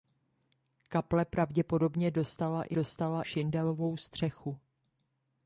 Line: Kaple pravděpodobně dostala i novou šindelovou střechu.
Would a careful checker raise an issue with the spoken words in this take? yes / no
yes